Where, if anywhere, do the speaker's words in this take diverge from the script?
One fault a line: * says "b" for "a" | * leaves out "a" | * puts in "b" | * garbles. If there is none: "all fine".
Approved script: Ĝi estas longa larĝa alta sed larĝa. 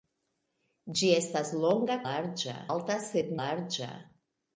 all fine